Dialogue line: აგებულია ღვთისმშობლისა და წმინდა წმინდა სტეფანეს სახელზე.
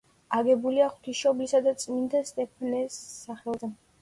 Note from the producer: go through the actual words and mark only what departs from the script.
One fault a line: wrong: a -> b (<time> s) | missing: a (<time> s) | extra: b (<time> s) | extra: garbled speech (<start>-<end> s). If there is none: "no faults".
missing: წმინდა (2.2 s)